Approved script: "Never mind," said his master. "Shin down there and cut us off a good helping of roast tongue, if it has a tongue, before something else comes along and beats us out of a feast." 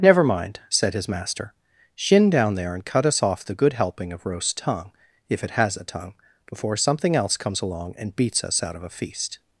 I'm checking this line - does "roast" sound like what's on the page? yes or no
yes